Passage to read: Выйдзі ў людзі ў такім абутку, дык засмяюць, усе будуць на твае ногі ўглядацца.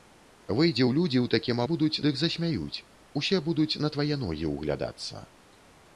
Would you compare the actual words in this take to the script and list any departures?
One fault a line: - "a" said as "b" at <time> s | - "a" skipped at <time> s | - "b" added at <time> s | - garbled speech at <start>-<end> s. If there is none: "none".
- "абутку" said as "будуць" at 1.7 s